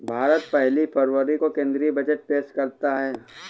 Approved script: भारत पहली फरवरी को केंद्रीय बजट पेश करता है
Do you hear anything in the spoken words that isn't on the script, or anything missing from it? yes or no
no